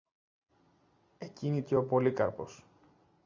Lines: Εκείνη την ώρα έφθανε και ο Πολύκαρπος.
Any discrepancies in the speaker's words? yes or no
yes